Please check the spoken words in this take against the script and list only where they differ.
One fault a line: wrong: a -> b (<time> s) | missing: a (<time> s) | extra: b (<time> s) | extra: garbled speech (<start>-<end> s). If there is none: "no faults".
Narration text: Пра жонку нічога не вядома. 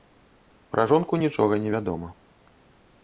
no faults